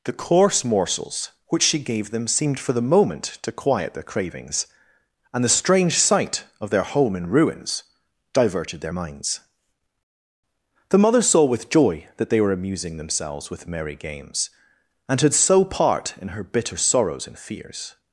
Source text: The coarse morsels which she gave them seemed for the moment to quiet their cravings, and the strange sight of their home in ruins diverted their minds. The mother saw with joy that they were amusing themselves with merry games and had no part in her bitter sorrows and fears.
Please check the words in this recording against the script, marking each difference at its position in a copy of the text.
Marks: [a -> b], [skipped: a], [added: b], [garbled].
The coarse morsels which she gave them seemed for the moment to quiet their cravings, and the strange sight of their home in ruins diverted their minds. The mother saw with joy that they were amusing themselves with merry games and had [no -> so] part in her bitter sorrows and fears.